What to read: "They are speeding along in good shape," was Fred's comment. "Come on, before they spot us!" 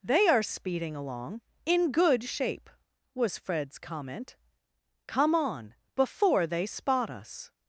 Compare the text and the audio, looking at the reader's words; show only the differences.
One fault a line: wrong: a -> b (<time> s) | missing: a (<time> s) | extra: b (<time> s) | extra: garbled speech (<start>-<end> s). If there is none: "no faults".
no faults